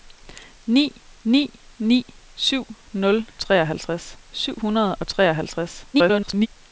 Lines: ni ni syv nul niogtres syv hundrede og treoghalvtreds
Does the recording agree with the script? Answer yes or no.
no